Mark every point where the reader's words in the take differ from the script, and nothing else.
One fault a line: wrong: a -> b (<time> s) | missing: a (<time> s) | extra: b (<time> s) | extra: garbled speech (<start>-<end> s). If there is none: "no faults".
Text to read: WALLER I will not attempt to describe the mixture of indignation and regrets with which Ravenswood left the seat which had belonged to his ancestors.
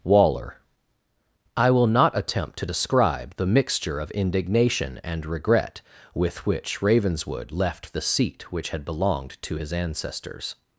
wrong: regrets -> regret (5.2 s)